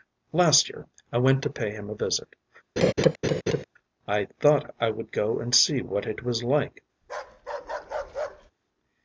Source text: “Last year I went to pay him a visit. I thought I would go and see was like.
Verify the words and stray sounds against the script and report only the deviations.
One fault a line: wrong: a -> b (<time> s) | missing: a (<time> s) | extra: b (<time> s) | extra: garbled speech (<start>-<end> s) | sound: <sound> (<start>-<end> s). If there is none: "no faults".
sound: laugh (2.8-3.6 s)
extra: what it (5.8 s)
sound: bark (7.0-8.5 s)